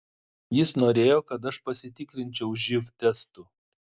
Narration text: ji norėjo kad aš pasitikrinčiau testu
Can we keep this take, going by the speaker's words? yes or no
no